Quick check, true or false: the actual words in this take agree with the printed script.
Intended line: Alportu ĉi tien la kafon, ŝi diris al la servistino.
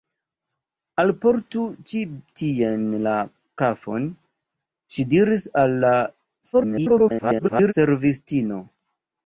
false